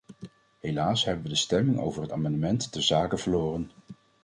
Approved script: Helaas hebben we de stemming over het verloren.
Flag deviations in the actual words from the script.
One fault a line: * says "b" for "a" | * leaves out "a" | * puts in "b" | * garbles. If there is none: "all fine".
* puts in "amendement ter zake"